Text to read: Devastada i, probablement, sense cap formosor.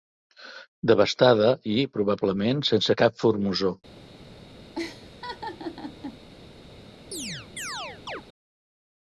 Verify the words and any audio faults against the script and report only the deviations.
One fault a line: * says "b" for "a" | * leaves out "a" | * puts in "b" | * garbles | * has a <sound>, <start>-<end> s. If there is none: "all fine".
* has a laugh, 4.8-6.2 s
* has a chirp, 7.1-8.2 s